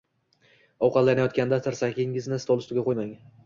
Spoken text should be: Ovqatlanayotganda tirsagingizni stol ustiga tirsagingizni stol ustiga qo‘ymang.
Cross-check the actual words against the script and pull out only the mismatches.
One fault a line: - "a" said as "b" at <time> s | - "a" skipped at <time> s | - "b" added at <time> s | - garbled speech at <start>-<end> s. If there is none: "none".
- "tirsagingizni stol ustiga" skipped at 2.9 s